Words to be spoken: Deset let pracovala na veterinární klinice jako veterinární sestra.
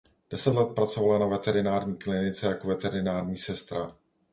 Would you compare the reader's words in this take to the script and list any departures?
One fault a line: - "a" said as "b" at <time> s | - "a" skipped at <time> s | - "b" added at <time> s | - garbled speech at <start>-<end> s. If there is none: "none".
none